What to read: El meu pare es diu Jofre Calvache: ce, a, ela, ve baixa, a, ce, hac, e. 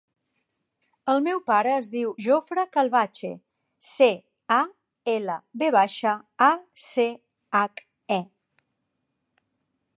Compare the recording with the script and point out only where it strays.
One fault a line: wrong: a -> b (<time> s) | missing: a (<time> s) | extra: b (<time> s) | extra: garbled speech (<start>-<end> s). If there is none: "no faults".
no faults